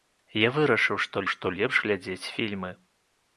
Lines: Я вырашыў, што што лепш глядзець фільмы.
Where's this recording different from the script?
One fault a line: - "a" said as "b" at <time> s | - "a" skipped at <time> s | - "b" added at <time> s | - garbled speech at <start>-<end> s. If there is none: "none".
none